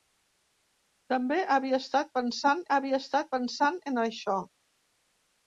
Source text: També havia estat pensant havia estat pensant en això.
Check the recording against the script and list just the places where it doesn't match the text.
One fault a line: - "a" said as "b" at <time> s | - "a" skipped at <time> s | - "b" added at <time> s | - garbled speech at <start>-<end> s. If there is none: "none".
none